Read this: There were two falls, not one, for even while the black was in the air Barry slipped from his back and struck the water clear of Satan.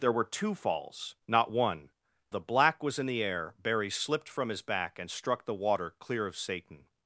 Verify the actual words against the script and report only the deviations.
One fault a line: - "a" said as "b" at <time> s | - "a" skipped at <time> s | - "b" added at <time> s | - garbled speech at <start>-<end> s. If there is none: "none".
- "for even while" skipped at 1.9 s